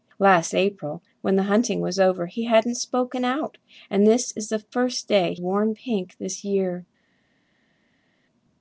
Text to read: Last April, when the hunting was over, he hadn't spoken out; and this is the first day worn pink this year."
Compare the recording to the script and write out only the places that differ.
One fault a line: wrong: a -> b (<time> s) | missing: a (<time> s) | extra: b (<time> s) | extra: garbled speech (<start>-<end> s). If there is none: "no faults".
no faults